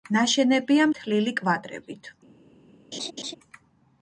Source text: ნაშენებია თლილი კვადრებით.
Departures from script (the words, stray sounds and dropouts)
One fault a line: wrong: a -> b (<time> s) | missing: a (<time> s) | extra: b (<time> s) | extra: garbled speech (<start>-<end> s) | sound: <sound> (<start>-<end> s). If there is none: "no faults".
sound: laugh (2.9-3.3 s)